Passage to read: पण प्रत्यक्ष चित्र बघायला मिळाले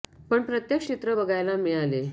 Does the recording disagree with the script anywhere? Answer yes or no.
no